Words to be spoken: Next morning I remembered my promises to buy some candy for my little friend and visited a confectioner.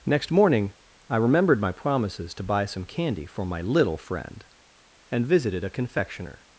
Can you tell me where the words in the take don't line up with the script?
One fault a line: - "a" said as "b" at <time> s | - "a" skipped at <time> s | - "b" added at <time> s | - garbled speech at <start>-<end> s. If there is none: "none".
none